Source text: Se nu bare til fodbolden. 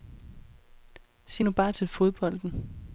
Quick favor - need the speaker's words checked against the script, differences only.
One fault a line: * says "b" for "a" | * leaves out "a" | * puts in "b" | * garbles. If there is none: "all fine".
all fine